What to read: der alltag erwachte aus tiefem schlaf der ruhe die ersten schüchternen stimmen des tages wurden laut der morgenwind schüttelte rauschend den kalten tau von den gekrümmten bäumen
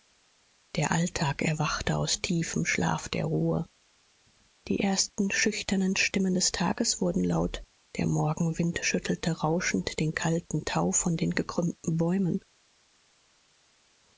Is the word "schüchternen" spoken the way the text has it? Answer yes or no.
yes